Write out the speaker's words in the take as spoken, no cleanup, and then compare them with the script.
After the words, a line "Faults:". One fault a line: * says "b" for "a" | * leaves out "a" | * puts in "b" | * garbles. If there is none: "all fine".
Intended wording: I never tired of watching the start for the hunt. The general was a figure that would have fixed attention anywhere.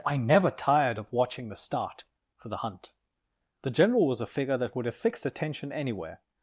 I never tired of watching the start for the hunt. The general was a figure that would have fixed attention anywhere.
Faults:
all fine